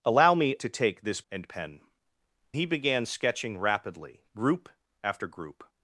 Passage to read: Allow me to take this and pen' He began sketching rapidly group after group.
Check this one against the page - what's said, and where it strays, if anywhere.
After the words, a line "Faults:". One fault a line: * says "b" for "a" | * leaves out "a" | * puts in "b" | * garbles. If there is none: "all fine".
Allow me to take this and pen' He began sketching rapidly group after group.
Faults:
all fine